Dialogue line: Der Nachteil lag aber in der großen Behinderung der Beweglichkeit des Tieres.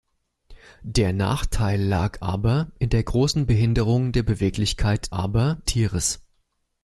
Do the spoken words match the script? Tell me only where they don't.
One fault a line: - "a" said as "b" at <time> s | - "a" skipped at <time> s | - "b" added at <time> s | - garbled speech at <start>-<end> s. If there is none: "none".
- "des" said as "aber" at 5.1 s